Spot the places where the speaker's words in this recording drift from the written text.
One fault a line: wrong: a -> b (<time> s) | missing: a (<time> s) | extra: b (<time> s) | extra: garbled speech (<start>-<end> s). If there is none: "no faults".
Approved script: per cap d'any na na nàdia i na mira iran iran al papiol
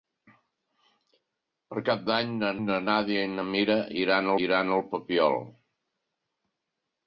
no faults